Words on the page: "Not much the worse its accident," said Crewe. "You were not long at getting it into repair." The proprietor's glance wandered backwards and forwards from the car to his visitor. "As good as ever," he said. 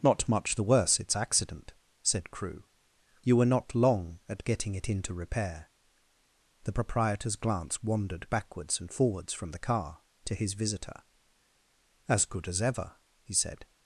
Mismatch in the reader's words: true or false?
false